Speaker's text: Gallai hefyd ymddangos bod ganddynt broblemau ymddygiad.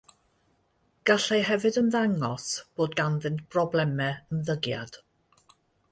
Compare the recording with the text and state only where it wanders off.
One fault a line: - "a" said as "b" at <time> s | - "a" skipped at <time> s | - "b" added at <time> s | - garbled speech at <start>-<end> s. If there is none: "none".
none